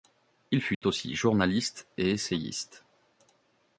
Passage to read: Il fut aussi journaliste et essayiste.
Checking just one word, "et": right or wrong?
right